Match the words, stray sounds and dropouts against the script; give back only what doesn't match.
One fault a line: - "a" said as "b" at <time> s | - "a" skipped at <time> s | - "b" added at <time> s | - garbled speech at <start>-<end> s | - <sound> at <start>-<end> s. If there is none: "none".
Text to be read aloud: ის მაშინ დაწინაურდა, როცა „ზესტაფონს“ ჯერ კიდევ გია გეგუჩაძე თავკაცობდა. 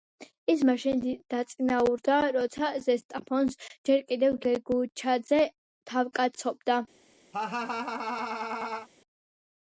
- "გია" skipped at 4.4 s
- laugh at 7.3-8.9 s